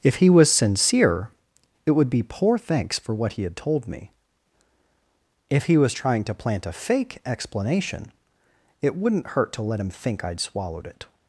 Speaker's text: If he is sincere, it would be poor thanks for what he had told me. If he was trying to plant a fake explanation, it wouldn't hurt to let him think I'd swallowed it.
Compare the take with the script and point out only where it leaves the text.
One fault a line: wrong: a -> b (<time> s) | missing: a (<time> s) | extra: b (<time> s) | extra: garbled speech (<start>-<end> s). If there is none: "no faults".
wrong: is -> was (0.3 s)